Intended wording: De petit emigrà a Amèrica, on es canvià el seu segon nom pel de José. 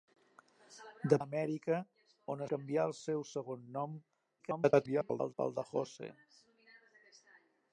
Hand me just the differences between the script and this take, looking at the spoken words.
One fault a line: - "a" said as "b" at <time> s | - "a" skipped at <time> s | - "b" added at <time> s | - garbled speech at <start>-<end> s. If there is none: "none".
- "petit emigrà" skipped at 1.2 s
- "es" skipped at 2.4 s
- garbled speech at 4.4-5.3 s